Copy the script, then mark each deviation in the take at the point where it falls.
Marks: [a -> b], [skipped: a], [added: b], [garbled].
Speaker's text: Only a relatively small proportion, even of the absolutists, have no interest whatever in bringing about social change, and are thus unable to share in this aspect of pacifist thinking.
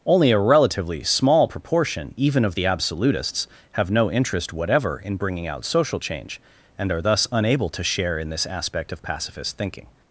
Only a relatively small proportion, even of the absolutists, have no interest whatever in bringing [about -> out] social change, and are thus unable to share in this aspect of pacifist thinking.